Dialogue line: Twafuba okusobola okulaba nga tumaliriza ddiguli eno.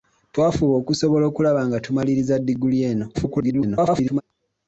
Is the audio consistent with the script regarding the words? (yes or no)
no